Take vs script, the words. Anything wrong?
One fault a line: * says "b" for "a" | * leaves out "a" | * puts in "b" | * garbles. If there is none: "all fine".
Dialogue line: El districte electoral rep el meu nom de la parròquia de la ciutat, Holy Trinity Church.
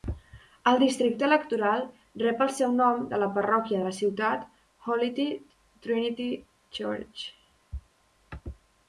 * says "seu" for "meu"